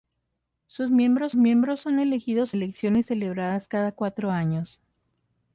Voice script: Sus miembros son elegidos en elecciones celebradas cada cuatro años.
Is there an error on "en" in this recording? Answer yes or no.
yes